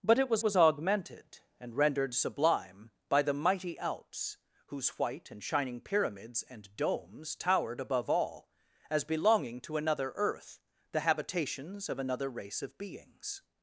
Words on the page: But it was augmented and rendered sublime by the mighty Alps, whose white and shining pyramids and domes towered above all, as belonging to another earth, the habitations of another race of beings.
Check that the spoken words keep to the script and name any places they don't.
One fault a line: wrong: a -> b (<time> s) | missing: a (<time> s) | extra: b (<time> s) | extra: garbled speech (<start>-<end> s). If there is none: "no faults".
extra: was (0.4 s)